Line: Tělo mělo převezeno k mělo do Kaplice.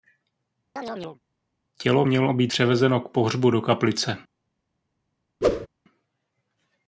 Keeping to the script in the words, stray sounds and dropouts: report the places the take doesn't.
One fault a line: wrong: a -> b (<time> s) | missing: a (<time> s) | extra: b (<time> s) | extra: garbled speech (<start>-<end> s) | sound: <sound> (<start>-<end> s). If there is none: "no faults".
sound: chirp (0.8-1.2 s)
extra: být (2.3 s)
wrong: mělo -> pohřbu (3.1 s)
sound: whoosh (5.4-5.7 s)